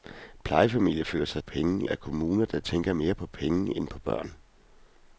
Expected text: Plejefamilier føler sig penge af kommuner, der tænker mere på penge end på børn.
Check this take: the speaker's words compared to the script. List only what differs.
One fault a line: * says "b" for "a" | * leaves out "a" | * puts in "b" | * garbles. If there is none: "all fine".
all fine